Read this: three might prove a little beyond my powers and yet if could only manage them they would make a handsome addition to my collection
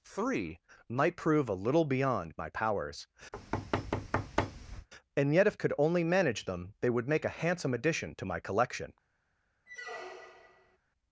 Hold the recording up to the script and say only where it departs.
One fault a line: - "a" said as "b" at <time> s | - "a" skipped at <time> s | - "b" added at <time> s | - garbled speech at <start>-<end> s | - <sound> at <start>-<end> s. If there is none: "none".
- thud at 3.3-4.9 s
- squeak at 9.7-10.8 s